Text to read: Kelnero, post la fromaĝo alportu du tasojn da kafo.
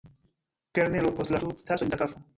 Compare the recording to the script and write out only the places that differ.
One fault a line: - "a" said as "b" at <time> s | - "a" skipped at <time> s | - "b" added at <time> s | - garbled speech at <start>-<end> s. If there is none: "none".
- "fromaĝo alportu" skipped at 1.4 s